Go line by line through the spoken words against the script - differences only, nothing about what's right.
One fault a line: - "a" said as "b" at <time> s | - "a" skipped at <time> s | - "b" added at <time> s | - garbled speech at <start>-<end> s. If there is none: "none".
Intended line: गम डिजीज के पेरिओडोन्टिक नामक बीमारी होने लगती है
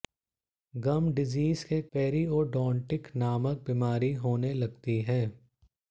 none